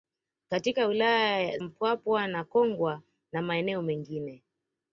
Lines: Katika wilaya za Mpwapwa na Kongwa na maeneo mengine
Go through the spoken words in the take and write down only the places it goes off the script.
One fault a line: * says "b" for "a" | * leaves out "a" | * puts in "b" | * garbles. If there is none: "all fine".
* leaves out "za"